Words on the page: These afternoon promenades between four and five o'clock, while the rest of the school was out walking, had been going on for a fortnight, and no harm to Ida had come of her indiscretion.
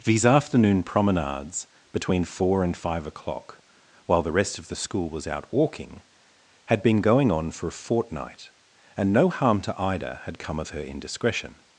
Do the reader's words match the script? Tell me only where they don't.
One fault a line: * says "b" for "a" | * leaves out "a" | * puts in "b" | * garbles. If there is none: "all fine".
all fine